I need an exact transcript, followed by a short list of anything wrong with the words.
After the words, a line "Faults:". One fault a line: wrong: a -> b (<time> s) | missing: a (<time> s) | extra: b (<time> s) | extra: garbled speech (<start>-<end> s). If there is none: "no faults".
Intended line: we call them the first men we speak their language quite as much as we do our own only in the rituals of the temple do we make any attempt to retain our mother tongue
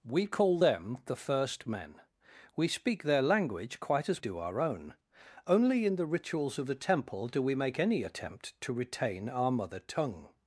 we call them the first men we speak their language quite as do our own only in the rituals of the temple do we make any attempt to retain our mother tongue
Faults:
missing: much as we (4.2 s)